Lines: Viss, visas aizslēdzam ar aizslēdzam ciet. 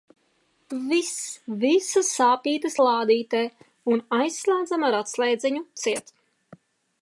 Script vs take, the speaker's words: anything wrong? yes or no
yes